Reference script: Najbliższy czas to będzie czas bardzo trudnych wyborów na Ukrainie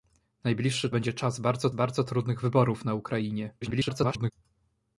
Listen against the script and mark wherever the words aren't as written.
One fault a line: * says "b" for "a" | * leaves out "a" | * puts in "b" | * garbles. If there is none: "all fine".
* leaves out "czas to"
* puts in "bardzo"
* garbles